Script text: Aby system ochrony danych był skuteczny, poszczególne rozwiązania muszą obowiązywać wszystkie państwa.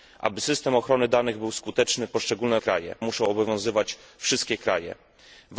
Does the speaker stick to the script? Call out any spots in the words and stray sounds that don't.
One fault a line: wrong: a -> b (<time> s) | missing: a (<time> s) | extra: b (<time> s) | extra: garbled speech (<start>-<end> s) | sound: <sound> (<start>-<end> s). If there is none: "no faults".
wrong: rozwiązania -> państwa (2.6 s)